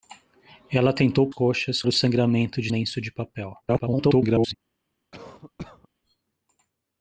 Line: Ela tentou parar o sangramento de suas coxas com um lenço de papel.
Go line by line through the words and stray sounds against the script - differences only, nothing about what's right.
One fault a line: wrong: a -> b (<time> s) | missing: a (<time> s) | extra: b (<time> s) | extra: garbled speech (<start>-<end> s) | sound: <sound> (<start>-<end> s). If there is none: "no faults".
wrong: parar -> coxas (1.3 s)
missing: suas coxas com (2.7 s)
extra: garbled speech (3.6-4.5 s)
sound: cough (5.1-5.9 s)